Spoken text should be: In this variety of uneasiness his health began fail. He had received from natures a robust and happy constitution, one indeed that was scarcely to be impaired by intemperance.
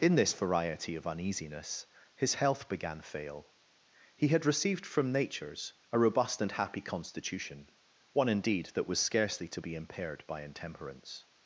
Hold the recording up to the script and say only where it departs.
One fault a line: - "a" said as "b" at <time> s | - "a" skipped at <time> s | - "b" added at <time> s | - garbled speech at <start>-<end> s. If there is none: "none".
none